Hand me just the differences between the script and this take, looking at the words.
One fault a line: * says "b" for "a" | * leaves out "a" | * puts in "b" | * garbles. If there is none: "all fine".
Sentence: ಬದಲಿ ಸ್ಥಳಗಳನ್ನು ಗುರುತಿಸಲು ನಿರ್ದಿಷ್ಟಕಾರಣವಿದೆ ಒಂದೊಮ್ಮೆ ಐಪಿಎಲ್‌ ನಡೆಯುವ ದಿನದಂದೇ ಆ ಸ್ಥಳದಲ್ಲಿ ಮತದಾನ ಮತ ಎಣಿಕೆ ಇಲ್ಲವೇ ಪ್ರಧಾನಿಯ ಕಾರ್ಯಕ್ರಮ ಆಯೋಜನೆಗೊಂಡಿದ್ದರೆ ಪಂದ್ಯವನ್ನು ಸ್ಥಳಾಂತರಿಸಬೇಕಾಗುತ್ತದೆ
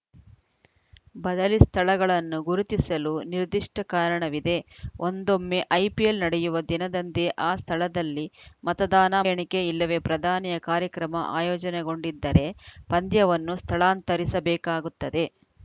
* leaves out "ಮತ"